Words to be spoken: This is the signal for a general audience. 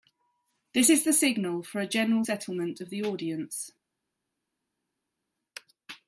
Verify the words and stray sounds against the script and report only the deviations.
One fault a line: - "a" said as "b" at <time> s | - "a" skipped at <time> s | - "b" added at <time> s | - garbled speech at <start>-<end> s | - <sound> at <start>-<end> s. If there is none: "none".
- "settlement of the" added at 2.2 s